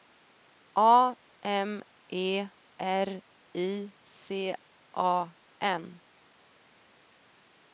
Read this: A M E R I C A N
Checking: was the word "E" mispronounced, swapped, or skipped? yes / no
no